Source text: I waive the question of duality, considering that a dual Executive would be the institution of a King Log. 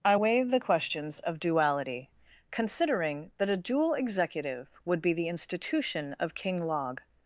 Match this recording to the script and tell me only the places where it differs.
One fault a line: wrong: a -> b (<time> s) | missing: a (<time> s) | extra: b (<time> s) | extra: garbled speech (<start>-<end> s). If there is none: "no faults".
wrong: question -> questions (0.6 s)
missing: a (6.3 s)